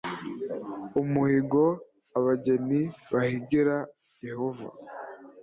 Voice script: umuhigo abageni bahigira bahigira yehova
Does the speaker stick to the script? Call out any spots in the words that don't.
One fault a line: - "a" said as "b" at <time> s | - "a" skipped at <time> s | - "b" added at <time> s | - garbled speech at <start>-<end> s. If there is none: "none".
- "bahigira" skipped at 3.8 s